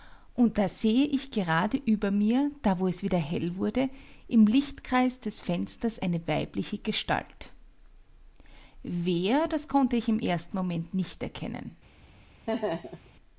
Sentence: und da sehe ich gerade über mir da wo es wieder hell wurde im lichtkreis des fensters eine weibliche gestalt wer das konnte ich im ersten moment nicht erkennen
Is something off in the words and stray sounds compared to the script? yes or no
yes